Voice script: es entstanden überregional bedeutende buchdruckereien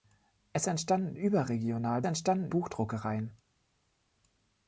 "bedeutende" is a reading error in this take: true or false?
true